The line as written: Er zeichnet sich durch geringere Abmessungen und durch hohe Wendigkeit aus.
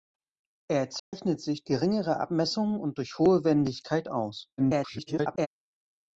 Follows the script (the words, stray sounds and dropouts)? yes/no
no